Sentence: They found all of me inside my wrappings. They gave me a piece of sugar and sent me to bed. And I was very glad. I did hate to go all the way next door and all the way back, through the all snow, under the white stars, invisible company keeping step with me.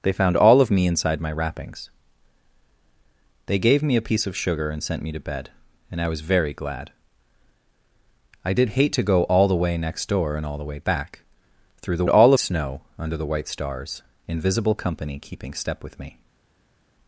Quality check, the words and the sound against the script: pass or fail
pass